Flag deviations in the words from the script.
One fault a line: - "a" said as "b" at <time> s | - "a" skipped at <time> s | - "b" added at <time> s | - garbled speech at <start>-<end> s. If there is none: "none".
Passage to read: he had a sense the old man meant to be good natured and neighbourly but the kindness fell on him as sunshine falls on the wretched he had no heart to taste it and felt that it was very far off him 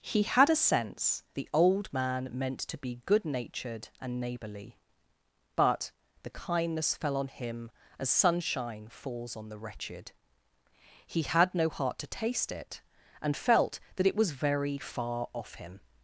none